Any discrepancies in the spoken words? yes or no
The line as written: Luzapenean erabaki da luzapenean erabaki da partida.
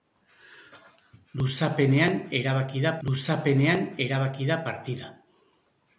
no